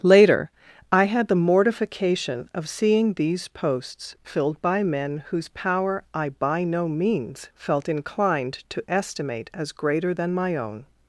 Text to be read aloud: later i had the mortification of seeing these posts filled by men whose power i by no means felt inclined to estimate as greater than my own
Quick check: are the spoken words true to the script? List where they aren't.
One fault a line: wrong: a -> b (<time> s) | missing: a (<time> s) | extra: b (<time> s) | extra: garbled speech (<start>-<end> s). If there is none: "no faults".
no faults